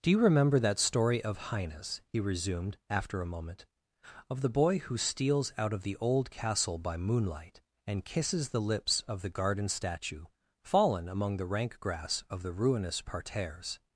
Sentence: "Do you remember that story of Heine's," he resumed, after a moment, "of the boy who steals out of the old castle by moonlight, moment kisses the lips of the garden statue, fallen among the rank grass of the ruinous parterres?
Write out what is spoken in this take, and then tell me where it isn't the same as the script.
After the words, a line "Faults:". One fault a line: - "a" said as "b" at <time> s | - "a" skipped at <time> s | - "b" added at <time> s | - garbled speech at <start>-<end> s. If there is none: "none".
"Do you remember that story of Heine's," he resumed, after a moment, "of the boy who steals out of the old castle by moonlight, and kisses the lips of the garden statue, fallen among the rank grass of the ruinous parterres?
Faults:
- "moment" said as "and" at 7.8 s